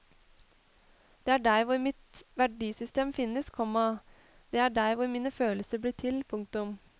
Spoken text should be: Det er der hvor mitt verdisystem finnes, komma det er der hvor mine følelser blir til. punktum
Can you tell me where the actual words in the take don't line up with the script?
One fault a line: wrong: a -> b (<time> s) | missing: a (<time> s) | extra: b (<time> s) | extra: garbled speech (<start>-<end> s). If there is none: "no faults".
no faults